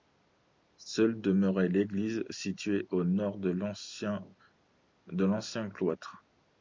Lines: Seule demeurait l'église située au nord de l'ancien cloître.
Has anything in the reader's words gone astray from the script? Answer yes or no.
no